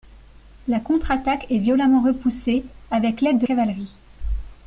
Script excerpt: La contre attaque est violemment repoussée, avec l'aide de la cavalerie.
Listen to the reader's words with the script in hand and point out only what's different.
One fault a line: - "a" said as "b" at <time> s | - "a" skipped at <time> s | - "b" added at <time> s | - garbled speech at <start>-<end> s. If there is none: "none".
- "la" skipped at 3.5 s